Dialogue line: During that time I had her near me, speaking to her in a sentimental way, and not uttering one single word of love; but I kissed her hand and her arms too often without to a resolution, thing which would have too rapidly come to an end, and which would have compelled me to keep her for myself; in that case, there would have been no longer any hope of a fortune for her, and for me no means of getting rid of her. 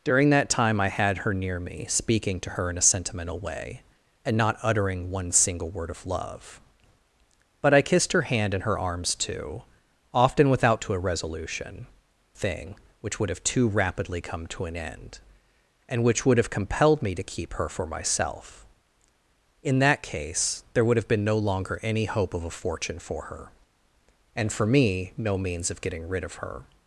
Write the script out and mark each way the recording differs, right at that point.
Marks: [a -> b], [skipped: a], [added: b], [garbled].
During that time I had her near me, speaking to her in a sentimental way, and not uttering one single word of love; but I kissed her hand and her arms too often without to a resolution, thing which would have too rapidly come to an end, and which would have compelled me to keep her for myself; in that case, there would have been no longer any hope of a fortune for her, and for me no means of getting rid of her.